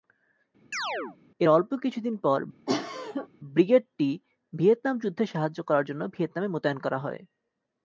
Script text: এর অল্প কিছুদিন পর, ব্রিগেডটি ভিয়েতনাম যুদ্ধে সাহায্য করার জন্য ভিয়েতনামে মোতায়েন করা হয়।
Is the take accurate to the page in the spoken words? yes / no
yes